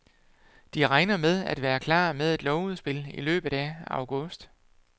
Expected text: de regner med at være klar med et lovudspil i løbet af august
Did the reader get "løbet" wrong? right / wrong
right